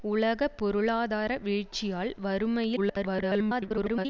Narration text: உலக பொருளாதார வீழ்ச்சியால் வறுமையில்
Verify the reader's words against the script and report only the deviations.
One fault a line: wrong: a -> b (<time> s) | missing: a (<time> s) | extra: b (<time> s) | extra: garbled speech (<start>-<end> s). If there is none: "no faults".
extra: garbled speech (2.8-4.1 s)